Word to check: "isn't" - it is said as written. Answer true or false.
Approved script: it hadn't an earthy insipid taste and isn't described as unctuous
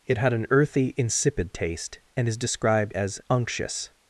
false